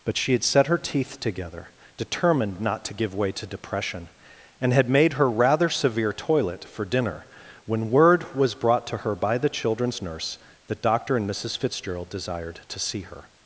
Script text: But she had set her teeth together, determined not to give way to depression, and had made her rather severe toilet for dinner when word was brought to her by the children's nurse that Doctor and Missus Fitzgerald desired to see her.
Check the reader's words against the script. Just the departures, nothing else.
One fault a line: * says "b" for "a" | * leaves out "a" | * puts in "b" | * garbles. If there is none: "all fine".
all fine